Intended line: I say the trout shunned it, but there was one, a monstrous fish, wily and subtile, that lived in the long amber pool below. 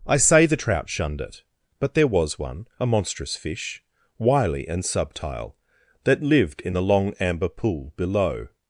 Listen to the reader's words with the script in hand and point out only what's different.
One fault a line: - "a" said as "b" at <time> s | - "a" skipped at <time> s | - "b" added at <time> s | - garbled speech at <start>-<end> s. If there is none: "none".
none